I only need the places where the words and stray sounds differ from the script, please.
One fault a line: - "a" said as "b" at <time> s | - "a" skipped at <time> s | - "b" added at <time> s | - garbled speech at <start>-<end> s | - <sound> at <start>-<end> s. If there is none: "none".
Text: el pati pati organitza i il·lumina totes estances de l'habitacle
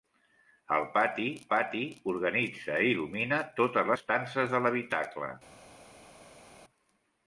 none